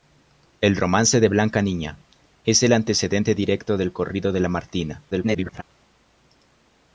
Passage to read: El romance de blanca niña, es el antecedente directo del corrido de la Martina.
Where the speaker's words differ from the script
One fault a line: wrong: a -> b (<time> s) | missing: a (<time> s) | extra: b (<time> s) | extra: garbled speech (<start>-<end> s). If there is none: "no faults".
extra: garbled speech (5.1-5.6 s)